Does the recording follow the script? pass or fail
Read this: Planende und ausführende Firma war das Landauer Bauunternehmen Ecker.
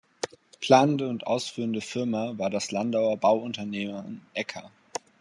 pass